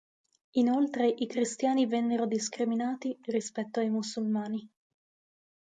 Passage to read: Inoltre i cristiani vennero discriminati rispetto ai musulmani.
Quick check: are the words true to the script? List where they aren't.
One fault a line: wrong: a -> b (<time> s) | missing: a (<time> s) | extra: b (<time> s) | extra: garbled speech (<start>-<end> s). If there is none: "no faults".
no faults